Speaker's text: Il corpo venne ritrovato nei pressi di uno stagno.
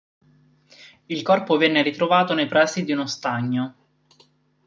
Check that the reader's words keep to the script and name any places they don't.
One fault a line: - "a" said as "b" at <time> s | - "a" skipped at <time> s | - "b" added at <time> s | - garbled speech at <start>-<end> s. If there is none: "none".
none